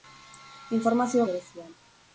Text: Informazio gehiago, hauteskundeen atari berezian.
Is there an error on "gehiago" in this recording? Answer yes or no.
yes